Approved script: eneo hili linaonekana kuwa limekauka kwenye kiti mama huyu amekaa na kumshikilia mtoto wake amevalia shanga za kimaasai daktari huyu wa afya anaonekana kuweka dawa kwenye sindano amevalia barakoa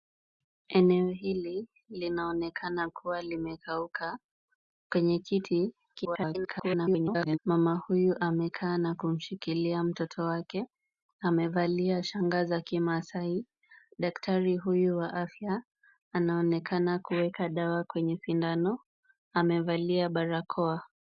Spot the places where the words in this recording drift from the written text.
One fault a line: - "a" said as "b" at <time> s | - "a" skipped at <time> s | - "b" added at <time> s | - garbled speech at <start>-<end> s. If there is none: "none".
- garbled speech at 5.9-7.4 s